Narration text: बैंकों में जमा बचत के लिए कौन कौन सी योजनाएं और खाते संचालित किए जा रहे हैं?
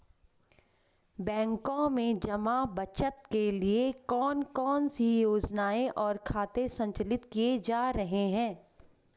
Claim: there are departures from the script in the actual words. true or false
false